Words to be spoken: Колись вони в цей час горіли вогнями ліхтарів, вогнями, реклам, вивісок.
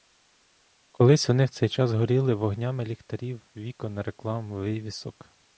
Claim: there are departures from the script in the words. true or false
true